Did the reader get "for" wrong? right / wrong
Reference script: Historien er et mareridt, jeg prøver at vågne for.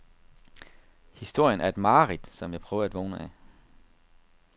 wrong